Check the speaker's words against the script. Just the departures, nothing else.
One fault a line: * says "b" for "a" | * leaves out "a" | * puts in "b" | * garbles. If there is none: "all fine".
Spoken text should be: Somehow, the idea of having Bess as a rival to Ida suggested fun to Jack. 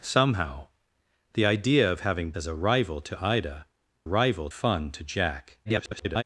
* leaves out "Bess"
* says "rival" for "suggested"
* garbles